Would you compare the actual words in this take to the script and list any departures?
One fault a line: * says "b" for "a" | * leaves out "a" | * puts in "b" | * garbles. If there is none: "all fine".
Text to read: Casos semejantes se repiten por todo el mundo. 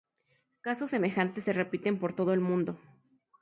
all fine